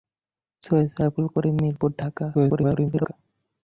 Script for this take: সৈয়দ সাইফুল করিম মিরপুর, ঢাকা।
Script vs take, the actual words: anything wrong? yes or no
yes